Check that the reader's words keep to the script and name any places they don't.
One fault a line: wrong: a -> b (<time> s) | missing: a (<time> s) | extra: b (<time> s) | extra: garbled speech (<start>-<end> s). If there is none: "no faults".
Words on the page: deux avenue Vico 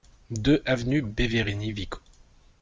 extra: Beverini (1.0 s)